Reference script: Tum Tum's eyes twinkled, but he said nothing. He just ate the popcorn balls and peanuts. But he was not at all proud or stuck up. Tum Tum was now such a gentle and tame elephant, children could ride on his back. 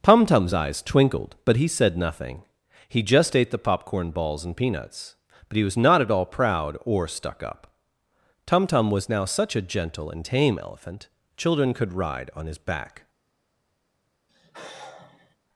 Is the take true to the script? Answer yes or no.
yes